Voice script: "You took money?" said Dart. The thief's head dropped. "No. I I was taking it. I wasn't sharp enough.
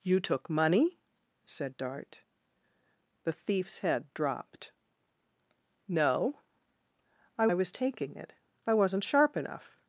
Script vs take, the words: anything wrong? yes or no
no